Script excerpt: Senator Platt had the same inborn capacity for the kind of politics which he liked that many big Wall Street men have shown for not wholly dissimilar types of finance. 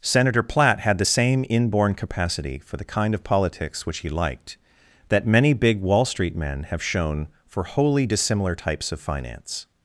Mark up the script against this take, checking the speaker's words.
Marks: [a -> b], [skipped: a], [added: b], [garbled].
Senator Platt had the same inborn capacity for the kind of politics which he liked that many big Wall Street men have shown for [skipped: not] wholly dissimilar types of finance.